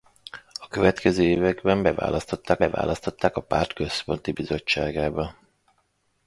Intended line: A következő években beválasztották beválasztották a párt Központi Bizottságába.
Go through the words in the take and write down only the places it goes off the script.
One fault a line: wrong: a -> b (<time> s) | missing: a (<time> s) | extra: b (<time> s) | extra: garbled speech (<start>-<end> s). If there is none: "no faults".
no faults